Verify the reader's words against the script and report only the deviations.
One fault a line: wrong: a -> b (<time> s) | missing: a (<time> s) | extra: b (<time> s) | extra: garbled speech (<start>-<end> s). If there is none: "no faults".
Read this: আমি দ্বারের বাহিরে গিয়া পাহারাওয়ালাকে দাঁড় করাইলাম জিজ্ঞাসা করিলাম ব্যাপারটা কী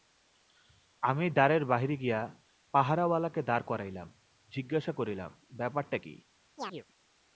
no faults